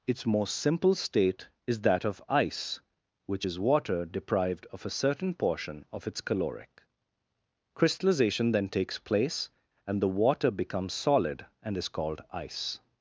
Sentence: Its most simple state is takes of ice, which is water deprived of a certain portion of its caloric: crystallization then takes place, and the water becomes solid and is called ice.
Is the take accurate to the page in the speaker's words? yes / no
no